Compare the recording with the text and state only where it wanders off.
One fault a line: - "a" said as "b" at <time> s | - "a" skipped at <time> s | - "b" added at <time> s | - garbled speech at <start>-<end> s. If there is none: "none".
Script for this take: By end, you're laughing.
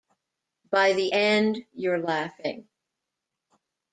- "the" added at 0.9 s